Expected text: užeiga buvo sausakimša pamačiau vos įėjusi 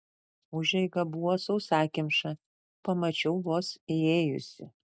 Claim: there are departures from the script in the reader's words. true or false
false